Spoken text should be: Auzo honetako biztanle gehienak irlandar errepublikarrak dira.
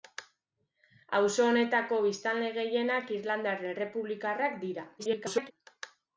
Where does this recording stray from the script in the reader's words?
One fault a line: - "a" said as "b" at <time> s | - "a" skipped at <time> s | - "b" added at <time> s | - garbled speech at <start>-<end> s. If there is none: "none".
- garbled speech at 5.0-5.5 s